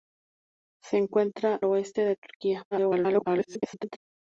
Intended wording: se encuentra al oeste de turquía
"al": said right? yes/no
no